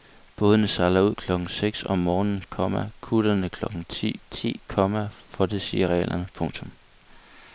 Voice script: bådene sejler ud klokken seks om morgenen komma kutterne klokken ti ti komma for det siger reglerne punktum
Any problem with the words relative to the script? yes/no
no